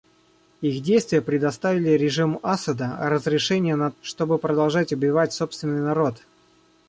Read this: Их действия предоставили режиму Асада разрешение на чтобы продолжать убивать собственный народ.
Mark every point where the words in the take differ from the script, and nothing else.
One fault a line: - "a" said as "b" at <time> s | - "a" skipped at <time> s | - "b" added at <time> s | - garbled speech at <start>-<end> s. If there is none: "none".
none